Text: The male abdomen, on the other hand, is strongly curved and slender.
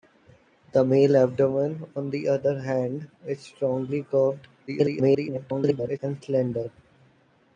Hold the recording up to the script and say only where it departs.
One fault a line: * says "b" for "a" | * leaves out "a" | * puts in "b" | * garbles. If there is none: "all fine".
* garbles